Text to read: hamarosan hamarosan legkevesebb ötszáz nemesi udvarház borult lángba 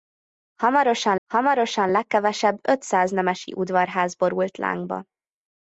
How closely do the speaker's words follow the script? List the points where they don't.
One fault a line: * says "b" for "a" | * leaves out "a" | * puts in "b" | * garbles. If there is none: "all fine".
all fine